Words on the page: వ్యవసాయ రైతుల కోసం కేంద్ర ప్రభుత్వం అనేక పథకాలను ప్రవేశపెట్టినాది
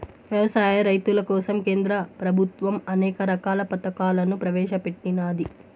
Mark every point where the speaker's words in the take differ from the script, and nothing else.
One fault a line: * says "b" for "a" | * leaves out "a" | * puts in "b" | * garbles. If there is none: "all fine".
* puts in "రకాల"